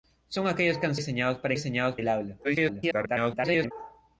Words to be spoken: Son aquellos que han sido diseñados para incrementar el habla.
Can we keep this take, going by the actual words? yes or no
no